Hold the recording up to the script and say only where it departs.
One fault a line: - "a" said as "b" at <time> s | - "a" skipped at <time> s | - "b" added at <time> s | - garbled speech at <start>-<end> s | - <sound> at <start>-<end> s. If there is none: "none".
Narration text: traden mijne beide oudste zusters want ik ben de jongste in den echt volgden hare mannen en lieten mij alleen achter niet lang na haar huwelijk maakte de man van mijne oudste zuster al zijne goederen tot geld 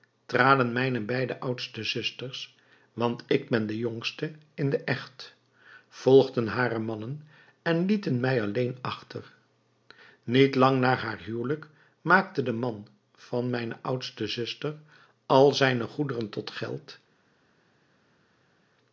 none